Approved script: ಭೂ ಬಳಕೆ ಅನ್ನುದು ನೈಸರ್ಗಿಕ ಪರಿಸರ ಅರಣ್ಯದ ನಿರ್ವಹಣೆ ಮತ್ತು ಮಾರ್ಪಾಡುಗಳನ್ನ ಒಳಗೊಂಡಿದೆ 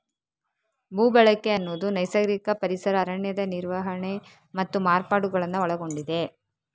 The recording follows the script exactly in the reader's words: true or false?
true